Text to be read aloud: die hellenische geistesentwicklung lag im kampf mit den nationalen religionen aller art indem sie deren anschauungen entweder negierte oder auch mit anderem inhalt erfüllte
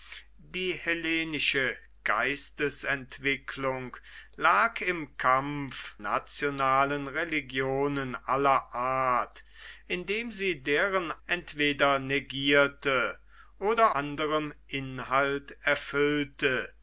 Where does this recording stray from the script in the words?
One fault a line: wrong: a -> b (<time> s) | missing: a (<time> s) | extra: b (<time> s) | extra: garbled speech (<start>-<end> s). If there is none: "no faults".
missing: mit den (6.0 s)
missing: anschauungen (11.1 s)
missing: auch mit (13.9 s)